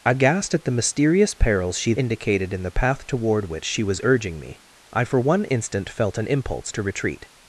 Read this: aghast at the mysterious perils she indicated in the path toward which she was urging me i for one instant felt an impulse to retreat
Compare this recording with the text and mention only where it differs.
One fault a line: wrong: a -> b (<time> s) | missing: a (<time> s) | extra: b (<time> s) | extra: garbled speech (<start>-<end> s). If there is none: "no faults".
no faults